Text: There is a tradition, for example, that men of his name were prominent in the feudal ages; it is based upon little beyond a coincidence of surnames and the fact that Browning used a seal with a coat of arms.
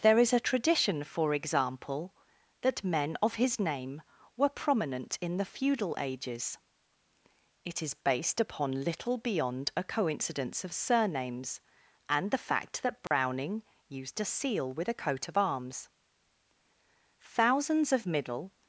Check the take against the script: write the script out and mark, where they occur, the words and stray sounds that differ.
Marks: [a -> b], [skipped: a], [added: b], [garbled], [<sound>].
There is a tradition, for example, that men of his name were prominent in the feudal ages; it is based upon little beyond a coincidence of surnames and the fact that Browning [dropout] used a seal with a coat of arms. [added: Thousands of middle]